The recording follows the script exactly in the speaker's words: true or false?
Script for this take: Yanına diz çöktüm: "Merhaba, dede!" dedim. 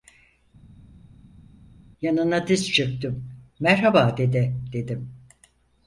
true